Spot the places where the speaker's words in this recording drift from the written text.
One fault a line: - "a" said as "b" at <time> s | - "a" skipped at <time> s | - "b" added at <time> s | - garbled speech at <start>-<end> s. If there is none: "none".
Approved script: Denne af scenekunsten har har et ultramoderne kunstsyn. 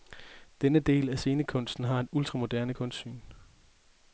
- "del" added at 0.8 s
- "har" skipped at 2.0 s